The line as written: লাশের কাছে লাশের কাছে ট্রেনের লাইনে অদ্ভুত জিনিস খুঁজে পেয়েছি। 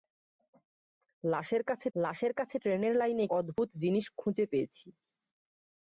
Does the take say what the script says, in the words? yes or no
yes